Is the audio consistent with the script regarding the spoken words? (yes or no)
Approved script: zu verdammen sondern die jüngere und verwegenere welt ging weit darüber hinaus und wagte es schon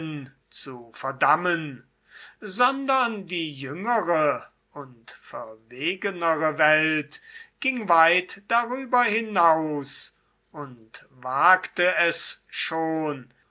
yes